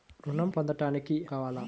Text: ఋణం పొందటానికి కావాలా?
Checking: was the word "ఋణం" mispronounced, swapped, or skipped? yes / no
no